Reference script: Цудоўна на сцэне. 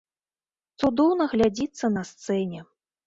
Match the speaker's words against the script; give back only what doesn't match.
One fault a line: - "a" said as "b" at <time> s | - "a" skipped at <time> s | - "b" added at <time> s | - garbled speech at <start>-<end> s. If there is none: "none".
- "глядзіцца" added at 1.3 s